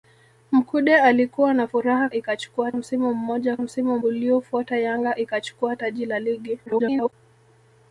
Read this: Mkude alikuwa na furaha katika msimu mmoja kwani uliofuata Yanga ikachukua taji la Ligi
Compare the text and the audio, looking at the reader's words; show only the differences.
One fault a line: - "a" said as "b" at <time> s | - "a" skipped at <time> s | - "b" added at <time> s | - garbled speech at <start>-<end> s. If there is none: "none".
- "katika" said as "ikachukua" at 2.1 s
- "kwani" said as "msimu" at 3.6 s
- garbled speech at 6.7-7.1 s